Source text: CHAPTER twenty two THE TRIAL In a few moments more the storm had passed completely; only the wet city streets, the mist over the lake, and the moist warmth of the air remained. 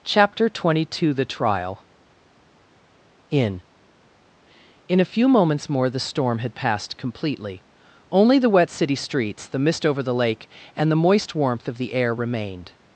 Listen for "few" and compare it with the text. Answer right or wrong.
right